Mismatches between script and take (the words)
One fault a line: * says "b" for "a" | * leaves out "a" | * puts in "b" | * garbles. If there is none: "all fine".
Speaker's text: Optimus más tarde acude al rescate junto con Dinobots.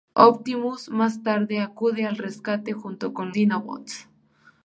all fine